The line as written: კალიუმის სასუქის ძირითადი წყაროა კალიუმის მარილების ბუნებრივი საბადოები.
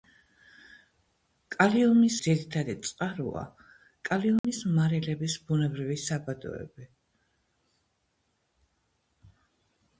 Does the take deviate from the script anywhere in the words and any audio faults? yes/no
yes